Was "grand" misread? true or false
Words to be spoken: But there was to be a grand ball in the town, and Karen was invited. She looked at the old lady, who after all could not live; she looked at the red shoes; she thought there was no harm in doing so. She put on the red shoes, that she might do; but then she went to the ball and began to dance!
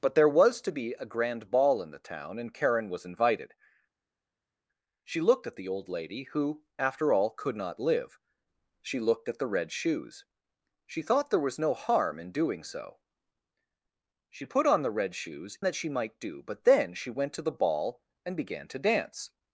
false